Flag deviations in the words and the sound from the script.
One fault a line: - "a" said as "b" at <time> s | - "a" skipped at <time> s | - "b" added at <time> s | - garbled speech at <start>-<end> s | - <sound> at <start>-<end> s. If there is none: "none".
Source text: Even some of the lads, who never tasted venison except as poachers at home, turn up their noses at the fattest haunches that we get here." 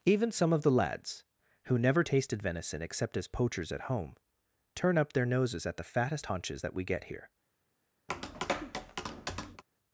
- tap at 8.1-9.6 s